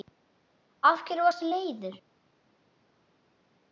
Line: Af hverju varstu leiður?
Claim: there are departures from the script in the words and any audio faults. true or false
false